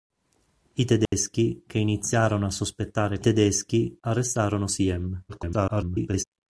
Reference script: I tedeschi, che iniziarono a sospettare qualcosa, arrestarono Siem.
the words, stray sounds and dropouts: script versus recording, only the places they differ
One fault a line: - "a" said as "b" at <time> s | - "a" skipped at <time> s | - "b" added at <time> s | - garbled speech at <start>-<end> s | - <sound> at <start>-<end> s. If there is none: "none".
- dropout at 1.1-1.1 s
- "qualcosa" said as "tedeschi" at 3.2 s
- garbled speech at 5.3-6.2 s